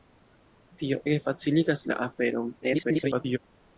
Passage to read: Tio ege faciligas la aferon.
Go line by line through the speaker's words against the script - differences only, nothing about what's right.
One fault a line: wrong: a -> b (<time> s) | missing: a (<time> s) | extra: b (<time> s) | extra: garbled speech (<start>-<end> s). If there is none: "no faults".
extra: garbled speech (2.6-3.4 s)